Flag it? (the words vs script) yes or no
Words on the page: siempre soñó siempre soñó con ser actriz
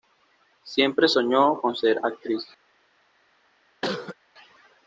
yes